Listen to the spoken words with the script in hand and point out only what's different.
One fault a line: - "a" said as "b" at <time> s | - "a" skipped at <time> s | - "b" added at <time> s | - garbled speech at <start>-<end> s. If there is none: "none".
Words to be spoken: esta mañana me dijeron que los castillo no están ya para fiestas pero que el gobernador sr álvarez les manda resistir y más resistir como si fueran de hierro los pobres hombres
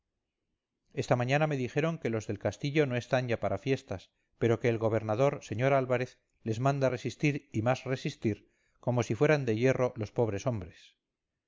- "del" added at 2.2 s